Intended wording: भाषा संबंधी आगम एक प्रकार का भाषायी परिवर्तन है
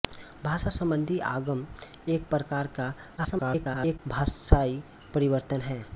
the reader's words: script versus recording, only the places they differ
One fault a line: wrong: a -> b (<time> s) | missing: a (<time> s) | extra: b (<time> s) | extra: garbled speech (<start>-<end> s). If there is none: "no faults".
extra: garbled speech (3.2-4.0 s)